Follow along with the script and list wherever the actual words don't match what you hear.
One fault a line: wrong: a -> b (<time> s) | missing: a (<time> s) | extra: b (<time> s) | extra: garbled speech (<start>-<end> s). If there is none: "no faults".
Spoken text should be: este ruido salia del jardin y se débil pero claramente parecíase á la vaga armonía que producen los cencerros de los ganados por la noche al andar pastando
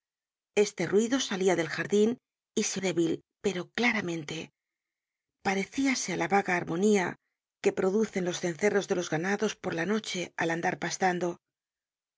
no faults